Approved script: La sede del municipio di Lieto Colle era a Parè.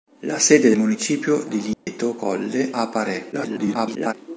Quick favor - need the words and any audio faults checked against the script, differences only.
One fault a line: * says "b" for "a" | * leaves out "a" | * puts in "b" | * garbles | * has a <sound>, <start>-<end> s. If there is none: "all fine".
* leaves out "del"
* has a dropout, 1.7-1.9 s
* leaves out "era"
* garbles